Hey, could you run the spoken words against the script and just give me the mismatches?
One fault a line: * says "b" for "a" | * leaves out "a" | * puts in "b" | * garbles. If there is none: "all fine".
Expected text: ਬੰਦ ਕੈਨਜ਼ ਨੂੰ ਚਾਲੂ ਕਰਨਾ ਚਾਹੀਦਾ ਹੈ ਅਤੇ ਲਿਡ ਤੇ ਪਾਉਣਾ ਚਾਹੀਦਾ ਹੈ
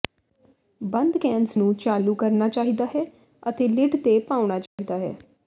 all fine